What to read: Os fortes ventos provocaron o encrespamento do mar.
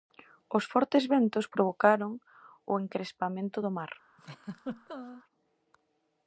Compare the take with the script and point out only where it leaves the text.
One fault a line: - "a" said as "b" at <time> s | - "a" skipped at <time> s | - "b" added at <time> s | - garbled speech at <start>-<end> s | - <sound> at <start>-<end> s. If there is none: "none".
- laugh at 4.2-5.2 s